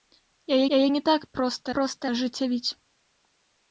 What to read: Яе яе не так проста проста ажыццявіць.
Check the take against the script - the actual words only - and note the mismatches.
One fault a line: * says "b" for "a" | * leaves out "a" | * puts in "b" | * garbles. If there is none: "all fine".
all fine